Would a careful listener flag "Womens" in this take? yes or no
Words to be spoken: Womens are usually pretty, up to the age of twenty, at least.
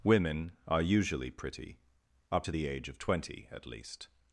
yes